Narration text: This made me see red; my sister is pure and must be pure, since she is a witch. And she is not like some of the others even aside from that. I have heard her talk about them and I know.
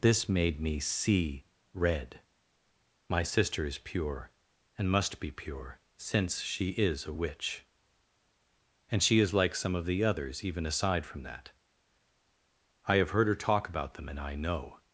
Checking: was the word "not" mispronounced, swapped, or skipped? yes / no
yes